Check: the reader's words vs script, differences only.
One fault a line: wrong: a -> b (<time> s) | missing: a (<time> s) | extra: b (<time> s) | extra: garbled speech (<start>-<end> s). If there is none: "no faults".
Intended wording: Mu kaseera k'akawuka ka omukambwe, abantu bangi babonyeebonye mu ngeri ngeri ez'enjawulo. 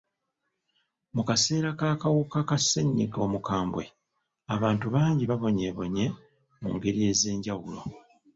extra: ssenyiga (2.6 s)
missing: ngeri (7.0 s)